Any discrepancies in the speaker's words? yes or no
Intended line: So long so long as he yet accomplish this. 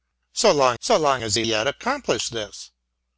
no